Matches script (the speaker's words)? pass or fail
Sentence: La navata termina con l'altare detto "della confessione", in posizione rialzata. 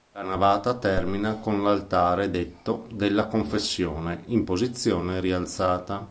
pass